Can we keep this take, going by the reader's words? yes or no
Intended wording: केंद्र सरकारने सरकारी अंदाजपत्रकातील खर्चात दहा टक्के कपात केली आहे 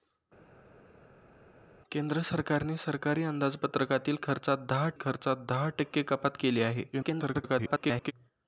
no